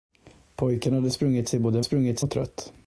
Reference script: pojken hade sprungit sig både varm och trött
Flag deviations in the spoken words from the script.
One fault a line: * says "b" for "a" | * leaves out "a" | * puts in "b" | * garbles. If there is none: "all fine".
* says "sprungit" for "varm"